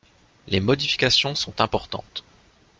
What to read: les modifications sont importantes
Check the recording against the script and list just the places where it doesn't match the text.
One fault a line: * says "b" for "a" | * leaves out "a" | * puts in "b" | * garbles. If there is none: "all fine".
all fine